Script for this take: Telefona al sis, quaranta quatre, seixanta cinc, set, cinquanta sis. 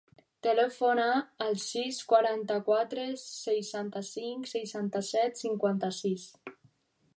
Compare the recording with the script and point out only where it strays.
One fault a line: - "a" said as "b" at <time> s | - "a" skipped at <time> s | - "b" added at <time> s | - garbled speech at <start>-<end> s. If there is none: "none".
- "seixanta" added at 4.5 s